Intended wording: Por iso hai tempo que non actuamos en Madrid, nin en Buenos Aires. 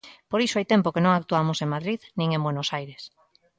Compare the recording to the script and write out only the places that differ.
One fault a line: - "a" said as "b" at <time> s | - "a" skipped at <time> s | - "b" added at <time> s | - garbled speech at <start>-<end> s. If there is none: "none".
none